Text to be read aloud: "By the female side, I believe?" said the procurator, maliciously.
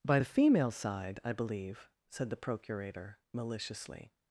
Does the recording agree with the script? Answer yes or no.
yes